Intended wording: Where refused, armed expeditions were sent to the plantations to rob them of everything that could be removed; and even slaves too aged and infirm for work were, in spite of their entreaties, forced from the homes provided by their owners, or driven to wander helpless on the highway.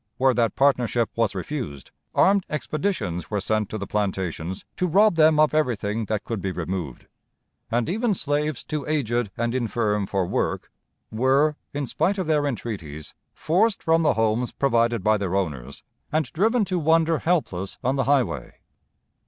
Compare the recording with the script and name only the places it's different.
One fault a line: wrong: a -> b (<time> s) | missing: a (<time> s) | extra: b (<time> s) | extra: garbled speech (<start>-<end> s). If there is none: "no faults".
extra: that partnership was (0.3 s)
wrong: or -> and (16.1 s)